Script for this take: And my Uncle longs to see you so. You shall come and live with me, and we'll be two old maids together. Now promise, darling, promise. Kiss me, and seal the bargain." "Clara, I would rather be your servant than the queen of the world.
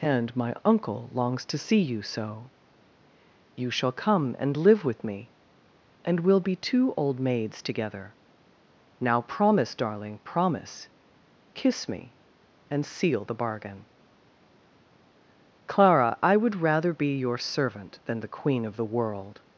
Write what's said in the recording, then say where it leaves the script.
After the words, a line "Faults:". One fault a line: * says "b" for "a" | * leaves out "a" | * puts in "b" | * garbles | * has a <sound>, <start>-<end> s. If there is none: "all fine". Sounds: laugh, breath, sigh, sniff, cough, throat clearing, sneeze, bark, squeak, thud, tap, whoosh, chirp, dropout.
And my Uncle longs to see you so. You shall come and live with me, and we'll be two old maids together. Now promise, darling, promise. Kiss me, and seal the bargain." "Clara, I would rather be your servant than the queen of the world.
Faults:
all fine